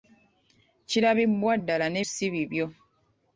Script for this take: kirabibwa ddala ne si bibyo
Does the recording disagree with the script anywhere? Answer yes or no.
no